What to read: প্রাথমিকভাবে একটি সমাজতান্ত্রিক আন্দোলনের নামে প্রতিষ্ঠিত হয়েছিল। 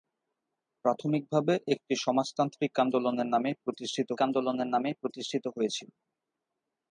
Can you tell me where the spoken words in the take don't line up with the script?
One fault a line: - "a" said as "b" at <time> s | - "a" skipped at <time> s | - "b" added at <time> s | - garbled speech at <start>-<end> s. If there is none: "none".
- "আন্দোলনের নামে প্রতিষ্ঠিত" added at 4.3 s